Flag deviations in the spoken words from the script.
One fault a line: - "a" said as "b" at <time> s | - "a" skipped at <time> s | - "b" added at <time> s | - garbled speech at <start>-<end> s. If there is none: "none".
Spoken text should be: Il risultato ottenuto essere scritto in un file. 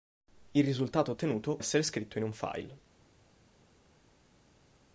none